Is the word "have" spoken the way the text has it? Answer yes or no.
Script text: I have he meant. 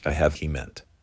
yes